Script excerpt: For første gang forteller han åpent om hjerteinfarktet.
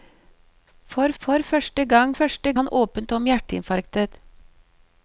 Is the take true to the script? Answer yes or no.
no